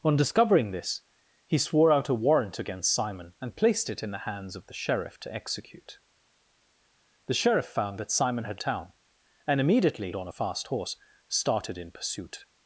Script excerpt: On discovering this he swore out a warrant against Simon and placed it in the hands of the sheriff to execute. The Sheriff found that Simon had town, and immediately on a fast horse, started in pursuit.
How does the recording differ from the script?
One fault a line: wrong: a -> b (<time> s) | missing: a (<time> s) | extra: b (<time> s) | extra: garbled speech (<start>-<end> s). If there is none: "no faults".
no faults